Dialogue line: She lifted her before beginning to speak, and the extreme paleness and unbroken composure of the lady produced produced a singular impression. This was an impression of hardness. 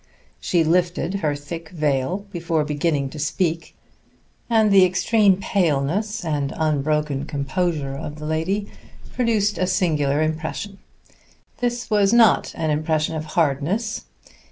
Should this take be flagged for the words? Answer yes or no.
yes